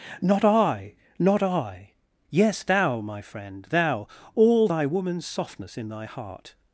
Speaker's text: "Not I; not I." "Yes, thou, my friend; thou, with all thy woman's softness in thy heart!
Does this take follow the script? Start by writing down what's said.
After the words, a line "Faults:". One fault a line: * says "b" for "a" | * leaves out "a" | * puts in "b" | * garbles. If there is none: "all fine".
"Not I; not I." "Yes, thou, my friend; thou, all thy woman's softness in thy heart!
Faults:
* leaves out "with"